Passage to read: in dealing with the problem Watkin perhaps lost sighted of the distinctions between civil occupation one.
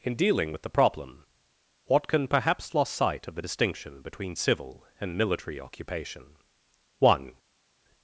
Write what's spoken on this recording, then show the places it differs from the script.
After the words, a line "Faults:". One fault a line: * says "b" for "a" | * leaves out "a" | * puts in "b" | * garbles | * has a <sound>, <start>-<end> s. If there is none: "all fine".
in dealing with the problem Watkin perhaps lost sight of the distinction between civil and military occupation one.
Faults:
* says "sight" for "sighted"
* says "distinction" for "distinctions"
* puts in "and military"